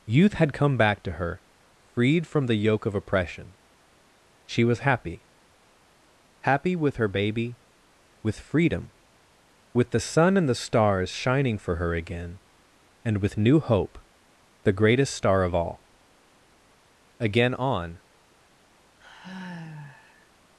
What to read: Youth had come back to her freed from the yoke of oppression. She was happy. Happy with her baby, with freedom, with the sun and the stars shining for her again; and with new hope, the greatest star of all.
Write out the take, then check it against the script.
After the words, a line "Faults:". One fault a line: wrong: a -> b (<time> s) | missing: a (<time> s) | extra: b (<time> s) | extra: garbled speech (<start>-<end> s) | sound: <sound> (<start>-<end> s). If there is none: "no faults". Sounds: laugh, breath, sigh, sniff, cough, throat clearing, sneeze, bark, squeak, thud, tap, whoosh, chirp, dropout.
Youth had come back to her freed from the yoke of oppression. She was happy. Happy with her baby, with freedom, with the sun and the stars shining for her again; and with new hope, the greatest star of all. Again on
Faults:
extra: Again on (17.2 s)
sound: sigh (19.0-20.3 s)